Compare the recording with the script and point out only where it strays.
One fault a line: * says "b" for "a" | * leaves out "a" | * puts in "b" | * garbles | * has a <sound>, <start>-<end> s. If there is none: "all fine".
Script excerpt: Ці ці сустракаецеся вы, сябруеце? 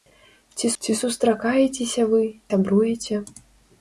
all fine